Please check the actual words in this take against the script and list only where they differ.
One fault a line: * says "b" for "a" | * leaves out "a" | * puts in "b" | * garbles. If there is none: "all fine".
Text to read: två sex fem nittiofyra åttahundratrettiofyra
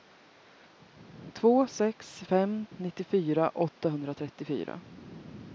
all fine